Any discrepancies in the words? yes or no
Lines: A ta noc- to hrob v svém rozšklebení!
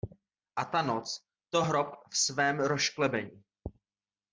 no